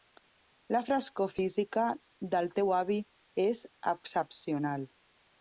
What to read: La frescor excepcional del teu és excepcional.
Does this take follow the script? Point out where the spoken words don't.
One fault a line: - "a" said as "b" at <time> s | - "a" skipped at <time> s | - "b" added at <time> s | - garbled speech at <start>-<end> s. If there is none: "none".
- "excepcional" said as "física" at 1.4 s
- "avi" added at 2.8 s